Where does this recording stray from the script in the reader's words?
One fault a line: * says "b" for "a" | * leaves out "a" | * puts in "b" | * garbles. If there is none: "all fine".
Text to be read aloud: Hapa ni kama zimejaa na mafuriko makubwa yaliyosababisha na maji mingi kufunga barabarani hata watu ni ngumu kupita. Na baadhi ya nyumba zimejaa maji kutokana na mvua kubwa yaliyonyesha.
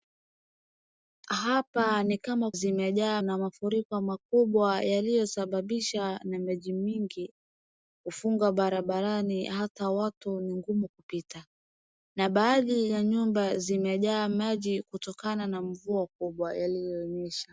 all fine